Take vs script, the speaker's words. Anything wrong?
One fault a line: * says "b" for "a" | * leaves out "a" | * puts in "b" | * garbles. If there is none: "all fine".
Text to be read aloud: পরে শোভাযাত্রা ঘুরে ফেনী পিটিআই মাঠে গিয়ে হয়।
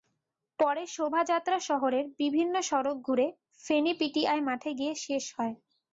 * puts in "শহরের বিভিন্ন সড়ক"
* puts in "শেষ"